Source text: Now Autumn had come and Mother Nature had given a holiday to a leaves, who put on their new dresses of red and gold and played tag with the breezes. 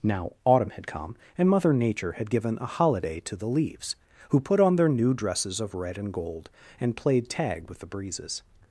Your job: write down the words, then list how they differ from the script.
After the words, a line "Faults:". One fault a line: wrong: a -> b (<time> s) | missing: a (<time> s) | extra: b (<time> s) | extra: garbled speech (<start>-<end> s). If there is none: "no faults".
Now Autumn had come and Mother Nature had given a holiday to the leaves, who put on their new dresses of red and gold and played tag with the breezes.
Faults:
wrong: a -> the (3.4 s)